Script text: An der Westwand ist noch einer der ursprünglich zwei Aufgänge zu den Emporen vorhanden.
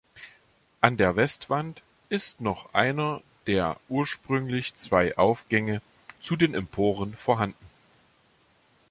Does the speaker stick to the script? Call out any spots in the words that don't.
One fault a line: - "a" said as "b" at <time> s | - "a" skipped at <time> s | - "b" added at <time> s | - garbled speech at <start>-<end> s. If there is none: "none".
none